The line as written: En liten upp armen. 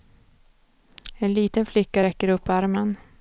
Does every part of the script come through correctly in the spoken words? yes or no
no